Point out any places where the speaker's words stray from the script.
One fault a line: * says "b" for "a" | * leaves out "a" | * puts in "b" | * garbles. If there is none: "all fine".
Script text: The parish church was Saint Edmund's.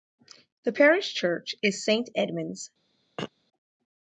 * says "is" for "was"